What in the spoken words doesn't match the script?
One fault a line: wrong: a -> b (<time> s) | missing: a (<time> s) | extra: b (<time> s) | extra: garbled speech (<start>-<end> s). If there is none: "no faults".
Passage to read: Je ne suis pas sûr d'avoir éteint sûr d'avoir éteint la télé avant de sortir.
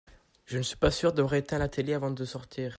missing: sûr d'avoir éteint (1.6 s)